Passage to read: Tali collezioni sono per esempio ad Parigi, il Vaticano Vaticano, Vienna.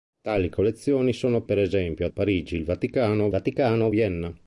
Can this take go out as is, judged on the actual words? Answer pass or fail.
pass